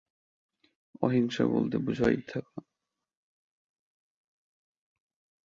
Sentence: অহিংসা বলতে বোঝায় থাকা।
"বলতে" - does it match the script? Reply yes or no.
yes